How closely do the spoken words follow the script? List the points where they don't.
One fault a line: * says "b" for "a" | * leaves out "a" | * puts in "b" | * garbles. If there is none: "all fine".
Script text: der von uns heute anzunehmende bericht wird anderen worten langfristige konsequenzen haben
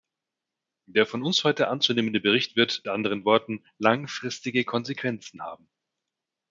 all fine